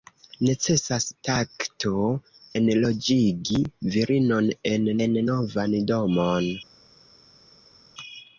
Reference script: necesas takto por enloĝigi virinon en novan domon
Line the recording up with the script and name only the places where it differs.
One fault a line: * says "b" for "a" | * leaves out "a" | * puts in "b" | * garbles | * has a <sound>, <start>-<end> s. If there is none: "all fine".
* leaves out "por"
* puts in "en"